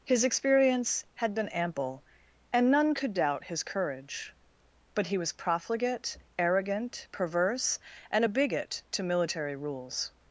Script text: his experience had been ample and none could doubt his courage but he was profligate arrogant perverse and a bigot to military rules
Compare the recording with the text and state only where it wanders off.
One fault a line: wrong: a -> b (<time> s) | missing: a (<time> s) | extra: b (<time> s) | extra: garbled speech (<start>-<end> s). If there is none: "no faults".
no faults